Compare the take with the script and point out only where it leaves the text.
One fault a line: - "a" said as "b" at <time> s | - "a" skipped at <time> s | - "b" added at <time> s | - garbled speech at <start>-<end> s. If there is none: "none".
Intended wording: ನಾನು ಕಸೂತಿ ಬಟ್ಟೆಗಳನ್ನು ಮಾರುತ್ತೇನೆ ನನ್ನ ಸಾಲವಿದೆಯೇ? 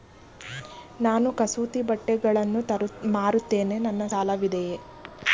none